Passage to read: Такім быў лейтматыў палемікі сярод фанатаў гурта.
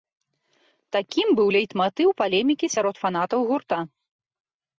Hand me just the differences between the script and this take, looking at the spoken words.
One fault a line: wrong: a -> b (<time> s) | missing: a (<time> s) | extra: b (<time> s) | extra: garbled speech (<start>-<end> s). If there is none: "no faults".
no faults